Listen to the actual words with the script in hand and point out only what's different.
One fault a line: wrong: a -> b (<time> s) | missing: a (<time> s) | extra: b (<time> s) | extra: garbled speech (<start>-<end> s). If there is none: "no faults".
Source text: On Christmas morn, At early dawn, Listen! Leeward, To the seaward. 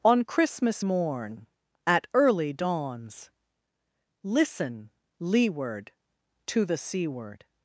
wrong: dawn -> dawns (2.5 s)